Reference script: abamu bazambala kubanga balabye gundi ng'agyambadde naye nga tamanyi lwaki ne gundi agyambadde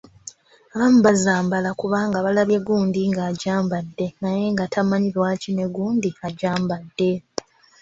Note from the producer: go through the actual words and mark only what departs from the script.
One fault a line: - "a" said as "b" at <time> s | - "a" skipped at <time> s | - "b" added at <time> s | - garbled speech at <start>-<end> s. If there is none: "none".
none